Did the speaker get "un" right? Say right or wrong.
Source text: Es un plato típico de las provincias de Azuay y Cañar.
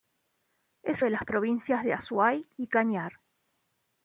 wrong